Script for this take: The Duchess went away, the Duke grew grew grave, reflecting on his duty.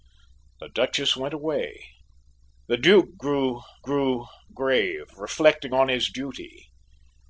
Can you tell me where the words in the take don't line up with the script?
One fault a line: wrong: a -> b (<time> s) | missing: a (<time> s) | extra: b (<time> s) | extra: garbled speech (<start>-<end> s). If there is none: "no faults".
no faults